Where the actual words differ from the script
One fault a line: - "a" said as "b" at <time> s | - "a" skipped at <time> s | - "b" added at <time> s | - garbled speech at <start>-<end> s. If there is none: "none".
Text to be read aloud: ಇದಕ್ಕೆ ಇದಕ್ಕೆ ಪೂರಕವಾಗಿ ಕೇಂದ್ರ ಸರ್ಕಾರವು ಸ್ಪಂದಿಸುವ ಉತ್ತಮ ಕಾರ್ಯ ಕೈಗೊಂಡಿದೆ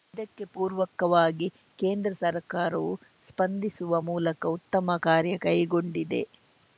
- "ಇದಕ್ಕೆ" skipped at 0.4 s
- "ಮೂಲಕ" added at 4.1 s